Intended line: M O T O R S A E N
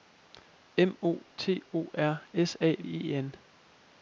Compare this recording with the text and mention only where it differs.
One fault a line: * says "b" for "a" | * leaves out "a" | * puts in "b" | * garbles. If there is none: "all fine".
all fine